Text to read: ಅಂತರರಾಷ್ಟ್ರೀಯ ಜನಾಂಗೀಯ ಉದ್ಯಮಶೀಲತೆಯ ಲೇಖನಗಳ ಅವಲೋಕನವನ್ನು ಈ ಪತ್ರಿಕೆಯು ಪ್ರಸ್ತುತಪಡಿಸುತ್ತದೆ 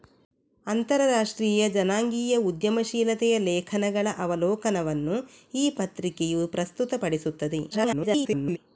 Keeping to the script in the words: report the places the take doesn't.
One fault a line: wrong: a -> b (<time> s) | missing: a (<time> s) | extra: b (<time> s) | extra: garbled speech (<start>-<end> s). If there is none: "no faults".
extra: garbled speech (7.7-8.6 s)